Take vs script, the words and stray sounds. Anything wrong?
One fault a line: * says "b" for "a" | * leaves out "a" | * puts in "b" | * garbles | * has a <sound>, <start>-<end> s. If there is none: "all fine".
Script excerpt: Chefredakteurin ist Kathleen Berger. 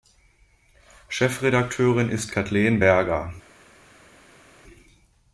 all fine